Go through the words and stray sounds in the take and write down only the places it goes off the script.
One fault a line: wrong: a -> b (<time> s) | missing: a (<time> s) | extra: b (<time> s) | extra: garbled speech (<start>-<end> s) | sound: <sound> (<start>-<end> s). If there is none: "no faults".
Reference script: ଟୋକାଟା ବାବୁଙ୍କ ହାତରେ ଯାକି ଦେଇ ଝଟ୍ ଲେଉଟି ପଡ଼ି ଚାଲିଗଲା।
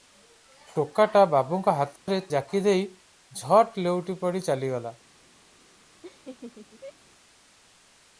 sound: dropout (2.0-2.1 s)
sound: laugh (6.0-6.9 s)